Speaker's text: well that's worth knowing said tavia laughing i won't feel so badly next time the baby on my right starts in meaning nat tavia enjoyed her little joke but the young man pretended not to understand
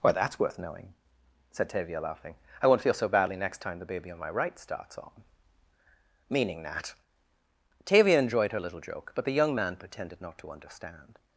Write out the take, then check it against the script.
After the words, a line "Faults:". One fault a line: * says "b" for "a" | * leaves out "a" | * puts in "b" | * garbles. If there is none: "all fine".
well that's worth knowing said tavia laughing i won't feel so badly next time the baby on my right starts on meaning nat tavia enjoyed her little joke but the young man pretended not to understand
Faults:
* says "on" for "in"